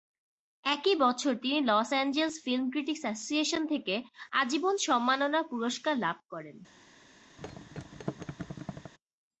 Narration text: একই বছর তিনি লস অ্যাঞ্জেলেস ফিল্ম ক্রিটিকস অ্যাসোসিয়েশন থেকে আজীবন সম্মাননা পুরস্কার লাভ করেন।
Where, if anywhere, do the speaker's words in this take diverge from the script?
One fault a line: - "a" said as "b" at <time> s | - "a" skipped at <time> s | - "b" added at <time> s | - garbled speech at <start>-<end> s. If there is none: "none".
none